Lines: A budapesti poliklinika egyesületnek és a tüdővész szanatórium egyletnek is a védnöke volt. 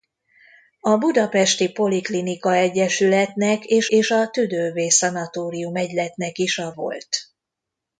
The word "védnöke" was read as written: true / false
false